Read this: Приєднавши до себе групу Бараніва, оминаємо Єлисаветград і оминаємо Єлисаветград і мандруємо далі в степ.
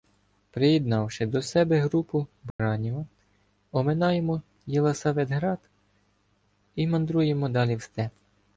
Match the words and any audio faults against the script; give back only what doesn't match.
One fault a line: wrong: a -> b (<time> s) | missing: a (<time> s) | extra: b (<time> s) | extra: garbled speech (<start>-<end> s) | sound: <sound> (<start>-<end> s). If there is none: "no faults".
sound: dropout (2.5-2.6 s)
missing: оминаємо Єлисаветград і (6.9 s)